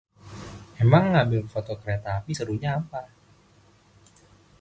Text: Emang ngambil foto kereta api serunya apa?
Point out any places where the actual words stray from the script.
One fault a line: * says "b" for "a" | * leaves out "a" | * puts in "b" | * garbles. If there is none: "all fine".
all fine